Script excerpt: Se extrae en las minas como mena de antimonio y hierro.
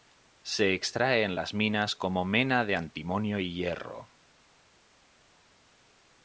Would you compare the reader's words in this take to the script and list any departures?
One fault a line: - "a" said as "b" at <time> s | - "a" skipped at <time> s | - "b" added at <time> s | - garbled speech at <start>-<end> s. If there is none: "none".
none